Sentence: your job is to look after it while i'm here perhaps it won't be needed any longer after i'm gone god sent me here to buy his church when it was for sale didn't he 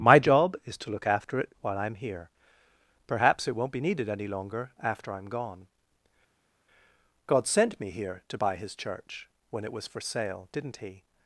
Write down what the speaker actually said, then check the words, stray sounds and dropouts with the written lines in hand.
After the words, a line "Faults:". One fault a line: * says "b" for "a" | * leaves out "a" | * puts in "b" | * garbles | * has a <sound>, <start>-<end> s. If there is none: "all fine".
my job is to look after it while i'm here perhaps it won't be needed any longer after i'm gone god sent me here to buy his church when it was for sale didn't he
Faults:
* says "my" for "your"